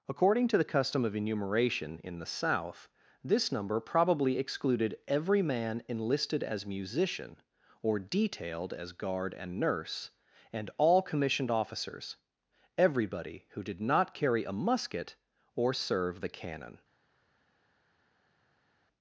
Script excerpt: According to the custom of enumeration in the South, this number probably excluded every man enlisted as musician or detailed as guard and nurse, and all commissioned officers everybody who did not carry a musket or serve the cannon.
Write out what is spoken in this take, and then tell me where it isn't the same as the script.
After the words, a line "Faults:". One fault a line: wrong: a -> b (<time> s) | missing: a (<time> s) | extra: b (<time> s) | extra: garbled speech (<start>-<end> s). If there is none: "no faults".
According to the custom of enumeration in the South, this number probably excluded every man enlisted as musician or detailed as guard and nurse, and all commissioned officers everybody who did not carry a musket or serve the cannon.
Faults:
no faults